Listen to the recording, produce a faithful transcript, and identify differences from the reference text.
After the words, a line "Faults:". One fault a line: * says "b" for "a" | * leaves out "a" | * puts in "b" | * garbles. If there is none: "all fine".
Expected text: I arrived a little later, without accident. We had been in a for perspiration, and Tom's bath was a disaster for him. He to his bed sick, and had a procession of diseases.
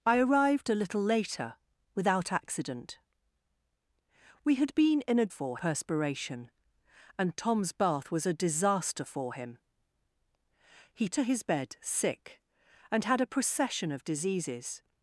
I arrived a little later, without accident. We had been in a for perspiration, and Tom's bath was a disaster for him. He to his bed sick, and had a procession of diseases.
Faults:
all fine